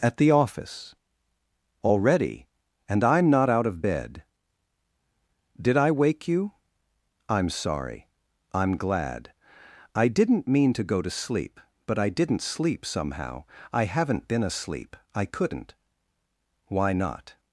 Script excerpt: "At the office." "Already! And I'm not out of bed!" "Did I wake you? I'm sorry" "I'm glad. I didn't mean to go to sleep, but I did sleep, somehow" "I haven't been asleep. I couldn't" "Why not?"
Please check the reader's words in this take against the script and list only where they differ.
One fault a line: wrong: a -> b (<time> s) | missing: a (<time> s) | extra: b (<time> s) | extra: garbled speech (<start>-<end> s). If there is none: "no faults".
wrong: did -> didn't (12.1 s)